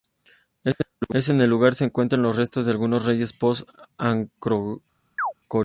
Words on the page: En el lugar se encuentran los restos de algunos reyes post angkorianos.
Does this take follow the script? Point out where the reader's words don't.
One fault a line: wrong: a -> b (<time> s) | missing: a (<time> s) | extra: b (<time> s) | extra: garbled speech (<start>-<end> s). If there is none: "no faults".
no faults